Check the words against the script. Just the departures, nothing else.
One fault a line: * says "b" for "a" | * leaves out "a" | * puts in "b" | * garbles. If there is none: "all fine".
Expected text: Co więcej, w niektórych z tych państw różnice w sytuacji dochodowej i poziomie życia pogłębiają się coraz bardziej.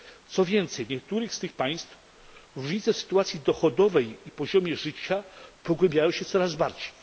all fine